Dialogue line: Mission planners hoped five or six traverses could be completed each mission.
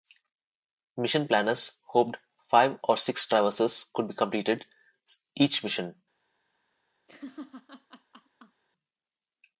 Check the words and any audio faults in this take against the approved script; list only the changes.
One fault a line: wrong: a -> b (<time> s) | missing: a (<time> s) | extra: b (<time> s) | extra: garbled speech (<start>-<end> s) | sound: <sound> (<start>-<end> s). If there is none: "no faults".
sound: laugh (7.1-8.6 s)